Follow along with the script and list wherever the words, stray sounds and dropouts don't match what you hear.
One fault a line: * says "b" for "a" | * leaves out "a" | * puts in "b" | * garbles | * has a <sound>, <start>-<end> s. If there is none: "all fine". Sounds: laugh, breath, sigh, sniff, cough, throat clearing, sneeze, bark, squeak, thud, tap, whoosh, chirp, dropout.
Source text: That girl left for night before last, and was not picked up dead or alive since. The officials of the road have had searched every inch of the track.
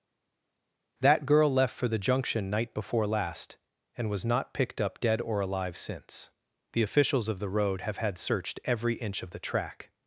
* puts in "the Junction"